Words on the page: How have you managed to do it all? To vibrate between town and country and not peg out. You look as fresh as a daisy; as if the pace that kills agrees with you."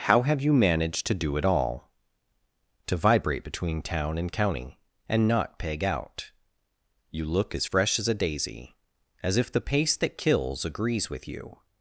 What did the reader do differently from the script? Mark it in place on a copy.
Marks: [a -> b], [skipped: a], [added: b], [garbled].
How have you managed to do it all? To vibrate between town and [country -> county] and not peg out. You look as fresh as a daisy; as if the pace that kills agrees with you."